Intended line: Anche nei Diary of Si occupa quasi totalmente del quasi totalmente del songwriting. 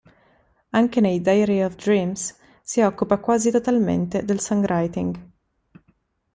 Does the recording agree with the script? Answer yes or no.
no